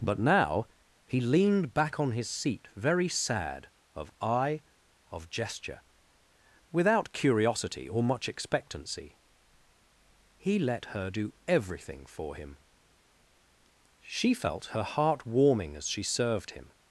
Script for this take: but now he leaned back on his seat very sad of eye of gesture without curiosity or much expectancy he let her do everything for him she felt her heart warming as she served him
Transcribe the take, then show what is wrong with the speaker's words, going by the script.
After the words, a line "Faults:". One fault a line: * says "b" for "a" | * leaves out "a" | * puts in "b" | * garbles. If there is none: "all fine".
but now he leaned back on his seat very sad of eye of gesture without curiosity or much expectancy he let her do everything for him she felt her heart warming as she served him
Faults:
all fine